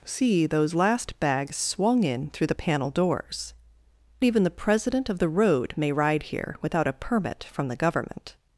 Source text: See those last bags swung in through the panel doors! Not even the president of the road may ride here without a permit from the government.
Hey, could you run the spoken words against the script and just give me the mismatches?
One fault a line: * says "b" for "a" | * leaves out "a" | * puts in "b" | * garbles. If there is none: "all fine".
* leaves out "Not"